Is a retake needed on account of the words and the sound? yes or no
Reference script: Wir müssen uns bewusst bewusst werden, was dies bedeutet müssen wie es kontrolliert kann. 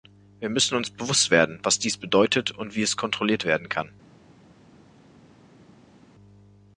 yes